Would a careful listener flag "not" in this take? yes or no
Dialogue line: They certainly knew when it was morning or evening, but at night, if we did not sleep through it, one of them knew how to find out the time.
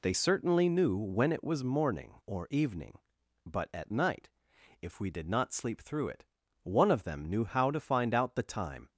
no